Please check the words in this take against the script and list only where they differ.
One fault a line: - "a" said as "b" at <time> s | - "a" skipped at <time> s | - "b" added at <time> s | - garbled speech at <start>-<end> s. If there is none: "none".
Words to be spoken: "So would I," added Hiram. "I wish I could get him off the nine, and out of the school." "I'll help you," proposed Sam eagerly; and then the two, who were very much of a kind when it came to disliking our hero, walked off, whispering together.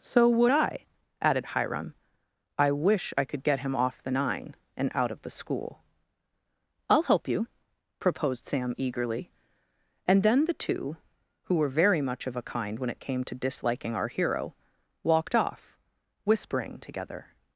none